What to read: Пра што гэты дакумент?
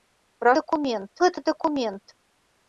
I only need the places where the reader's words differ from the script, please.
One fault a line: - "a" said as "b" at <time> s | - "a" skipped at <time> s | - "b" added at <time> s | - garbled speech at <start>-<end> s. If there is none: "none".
- "што" said as "дакумент" at 0.6 s